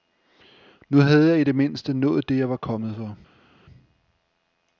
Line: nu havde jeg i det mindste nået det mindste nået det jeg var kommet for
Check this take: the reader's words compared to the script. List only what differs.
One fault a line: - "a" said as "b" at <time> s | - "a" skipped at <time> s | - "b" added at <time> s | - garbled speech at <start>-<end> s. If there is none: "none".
- "mindste nået det" skipped at 2.4 s